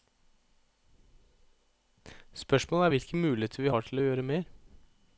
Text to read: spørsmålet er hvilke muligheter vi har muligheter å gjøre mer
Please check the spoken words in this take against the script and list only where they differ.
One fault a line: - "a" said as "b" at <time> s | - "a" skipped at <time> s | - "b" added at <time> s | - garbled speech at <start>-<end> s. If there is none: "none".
- "muligheter" said as "til" at 3.9 s